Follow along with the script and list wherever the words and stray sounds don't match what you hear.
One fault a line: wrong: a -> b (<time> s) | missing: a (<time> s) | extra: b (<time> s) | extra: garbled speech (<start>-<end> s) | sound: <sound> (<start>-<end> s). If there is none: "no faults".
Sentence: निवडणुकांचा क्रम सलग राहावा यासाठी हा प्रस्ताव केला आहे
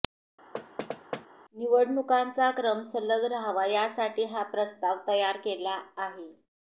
sound: thud (0.5-1.3 s)
extra: तयार (5.1 s)